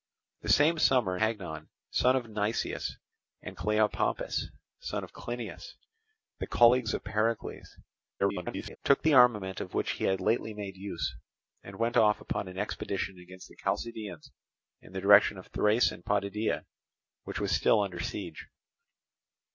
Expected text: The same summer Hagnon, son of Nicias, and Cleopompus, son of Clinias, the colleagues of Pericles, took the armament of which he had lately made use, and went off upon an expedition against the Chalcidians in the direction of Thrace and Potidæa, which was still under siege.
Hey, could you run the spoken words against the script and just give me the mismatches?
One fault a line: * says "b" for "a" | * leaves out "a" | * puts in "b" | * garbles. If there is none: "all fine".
* garbles